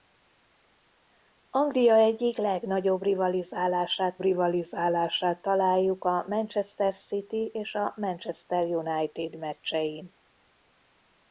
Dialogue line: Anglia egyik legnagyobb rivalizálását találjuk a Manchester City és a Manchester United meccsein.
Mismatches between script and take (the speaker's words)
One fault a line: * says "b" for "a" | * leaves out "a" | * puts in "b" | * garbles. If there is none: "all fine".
* puts in "rivalizálását"